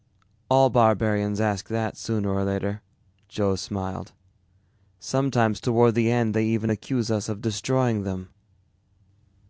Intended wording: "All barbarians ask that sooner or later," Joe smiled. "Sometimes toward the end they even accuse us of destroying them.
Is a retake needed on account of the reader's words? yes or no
no